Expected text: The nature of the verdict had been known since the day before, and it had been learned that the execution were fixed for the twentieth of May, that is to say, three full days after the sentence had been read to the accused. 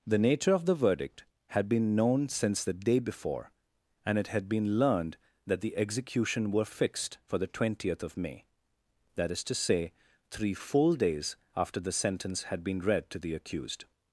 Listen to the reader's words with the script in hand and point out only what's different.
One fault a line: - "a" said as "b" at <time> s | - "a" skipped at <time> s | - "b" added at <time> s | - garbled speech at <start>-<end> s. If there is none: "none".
none